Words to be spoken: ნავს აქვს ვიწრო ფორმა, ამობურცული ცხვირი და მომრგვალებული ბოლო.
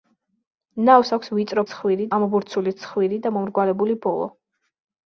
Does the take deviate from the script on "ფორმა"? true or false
true